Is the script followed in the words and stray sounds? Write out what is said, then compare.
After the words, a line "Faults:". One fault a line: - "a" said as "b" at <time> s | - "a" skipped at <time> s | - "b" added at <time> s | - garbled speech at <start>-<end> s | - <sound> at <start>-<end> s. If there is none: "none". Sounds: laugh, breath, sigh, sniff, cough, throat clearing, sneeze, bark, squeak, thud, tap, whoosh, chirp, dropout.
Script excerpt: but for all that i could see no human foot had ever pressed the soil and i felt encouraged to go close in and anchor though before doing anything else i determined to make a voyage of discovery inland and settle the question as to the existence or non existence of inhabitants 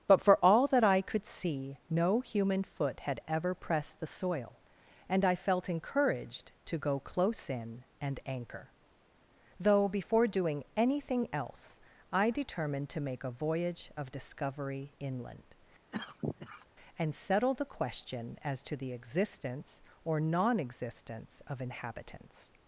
but for all that i could see no human foot had ever pressed the soil and i felt encouraged to go close in and anchor though before doing anything else i determined to make a voyage of discovery inland and settle the question as to the existence or non existence of inhabitants
Faults:
- cough at 15.9-16.7 s